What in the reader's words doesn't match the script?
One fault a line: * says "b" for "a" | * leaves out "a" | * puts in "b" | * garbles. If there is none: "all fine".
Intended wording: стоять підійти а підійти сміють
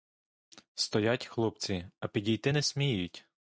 * says "хлопці" for "підійти"
* puts in "не"